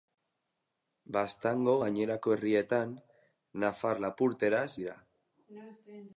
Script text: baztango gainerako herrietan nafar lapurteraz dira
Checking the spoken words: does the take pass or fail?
pass